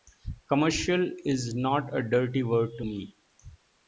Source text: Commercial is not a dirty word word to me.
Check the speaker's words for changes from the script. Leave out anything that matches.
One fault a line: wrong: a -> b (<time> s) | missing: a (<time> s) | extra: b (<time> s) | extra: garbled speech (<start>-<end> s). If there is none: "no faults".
missing: word (2.7 s)